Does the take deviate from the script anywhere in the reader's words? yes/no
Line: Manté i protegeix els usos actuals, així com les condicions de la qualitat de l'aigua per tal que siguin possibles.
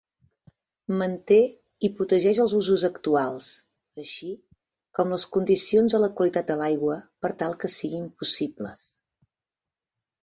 no